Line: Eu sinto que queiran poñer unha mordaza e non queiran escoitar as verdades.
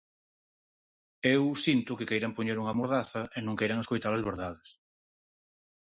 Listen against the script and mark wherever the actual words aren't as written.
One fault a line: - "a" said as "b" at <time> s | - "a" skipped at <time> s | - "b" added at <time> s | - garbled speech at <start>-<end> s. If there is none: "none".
none